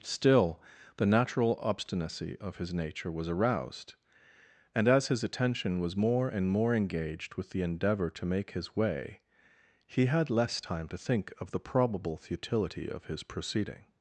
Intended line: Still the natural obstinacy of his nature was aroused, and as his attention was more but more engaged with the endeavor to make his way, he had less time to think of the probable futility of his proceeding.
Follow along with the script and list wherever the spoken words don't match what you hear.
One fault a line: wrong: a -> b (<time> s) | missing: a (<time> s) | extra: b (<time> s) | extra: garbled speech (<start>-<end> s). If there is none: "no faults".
wrong: but -> and (6.3 s)